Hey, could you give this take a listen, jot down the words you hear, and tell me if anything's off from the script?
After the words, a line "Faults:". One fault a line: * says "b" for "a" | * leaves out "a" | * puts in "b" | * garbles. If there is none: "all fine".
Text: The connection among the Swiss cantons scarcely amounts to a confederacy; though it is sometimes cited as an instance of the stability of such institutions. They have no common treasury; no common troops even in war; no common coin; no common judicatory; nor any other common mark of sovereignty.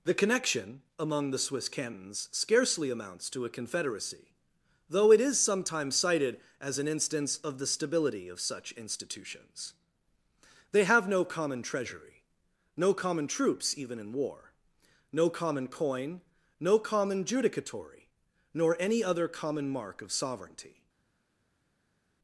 The connection among the Swiss cantons scarcely amounts to a confederacy; though it is sometimes cited as an instance of the stability of such institutions. They have no common treasury; no common troops even in war; no common coin; no common judicatory; nor any other common mark of sovereignty.
Faults:
all fine